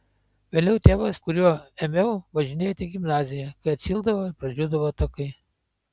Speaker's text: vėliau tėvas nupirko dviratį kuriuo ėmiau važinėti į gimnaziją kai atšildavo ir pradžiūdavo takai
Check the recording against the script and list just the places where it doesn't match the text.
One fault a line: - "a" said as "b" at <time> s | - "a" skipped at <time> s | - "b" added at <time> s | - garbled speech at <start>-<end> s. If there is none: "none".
- "nupirko dviratį" skipped at 1.2 s